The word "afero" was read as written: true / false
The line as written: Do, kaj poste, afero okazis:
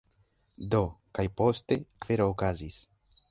true